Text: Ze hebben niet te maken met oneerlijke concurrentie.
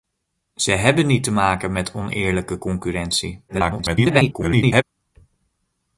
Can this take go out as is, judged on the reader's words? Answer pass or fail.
fail